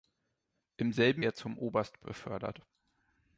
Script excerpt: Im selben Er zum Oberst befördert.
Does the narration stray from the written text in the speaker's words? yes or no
no